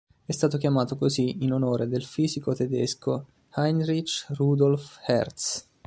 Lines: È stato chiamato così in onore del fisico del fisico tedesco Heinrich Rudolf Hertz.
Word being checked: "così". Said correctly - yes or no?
yes